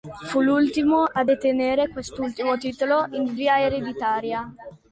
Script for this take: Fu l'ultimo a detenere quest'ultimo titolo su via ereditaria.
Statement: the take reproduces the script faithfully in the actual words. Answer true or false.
false